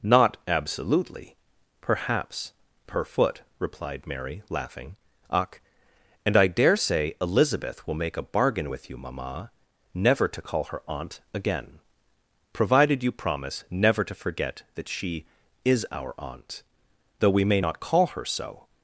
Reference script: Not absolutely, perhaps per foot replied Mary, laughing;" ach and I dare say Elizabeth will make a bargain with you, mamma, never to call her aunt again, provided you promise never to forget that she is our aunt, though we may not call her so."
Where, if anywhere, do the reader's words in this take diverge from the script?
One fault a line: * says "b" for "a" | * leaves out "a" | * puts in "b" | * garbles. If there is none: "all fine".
all fine